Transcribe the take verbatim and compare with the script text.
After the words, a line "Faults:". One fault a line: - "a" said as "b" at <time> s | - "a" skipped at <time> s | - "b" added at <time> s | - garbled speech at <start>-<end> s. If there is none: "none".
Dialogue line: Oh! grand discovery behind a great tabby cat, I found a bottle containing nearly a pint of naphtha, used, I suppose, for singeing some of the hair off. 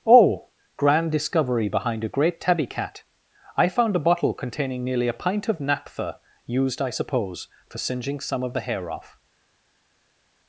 Oh! grand discovery behind a great tabby cat, I found a bottle containing nearly a pint of naphtha, used, I suppose, for singeing some of the hair off.
Faults:
none